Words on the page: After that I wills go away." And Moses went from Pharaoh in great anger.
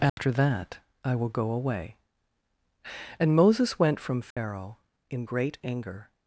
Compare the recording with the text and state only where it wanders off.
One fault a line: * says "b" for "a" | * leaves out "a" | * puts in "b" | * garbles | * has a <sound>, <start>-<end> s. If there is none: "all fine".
* has a dropout, 0.1-0.2 s
* says "will" for "wills"
* has a dropout, 4.3-4.4 s